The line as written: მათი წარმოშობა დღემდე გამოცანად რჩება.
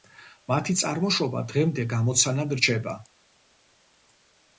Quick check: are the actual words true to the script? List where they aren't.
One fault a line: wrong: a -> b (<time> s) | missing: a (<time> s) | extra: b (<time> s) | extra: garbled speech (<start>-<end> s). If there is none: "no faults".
no faults